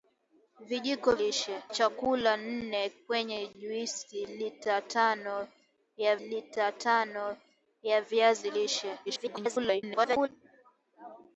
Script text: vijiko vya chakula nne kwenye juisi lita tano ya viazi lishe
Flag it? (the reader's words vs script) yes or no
yes